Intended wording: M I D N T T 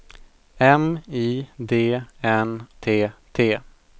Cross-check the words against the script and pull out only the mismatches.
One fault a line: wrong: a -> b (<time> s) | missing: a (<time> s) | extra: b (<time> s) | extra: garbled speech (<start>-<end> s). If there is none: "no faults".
no faults